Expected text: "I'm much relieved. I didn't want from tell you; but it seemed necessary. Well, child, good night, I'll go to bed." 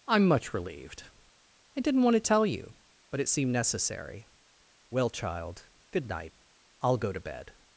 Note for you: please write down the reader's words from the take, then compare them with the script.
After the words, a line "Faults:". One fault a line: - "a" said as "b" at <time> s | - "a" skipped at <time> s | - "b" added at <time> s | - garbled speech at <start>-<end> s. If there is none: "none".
"I'm much relieved. I didn't want to tell you; but it seemed necessary. Well, child, good night, I'll go to bed."
Faults:
- "from" said as "to" at 2.1 s